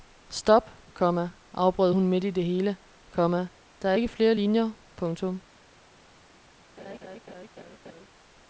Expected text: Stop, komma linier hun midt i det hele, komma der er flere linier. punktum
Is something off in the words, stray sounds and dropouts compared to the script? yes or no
yes